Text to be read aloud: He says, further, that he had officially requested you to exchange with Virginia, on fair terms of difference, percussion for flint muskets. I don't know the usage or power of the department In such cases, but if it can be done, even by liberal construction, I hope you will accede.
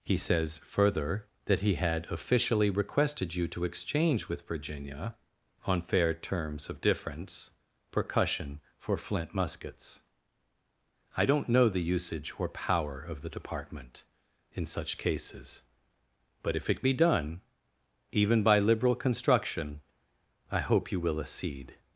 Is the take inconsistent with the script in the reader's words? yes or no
yes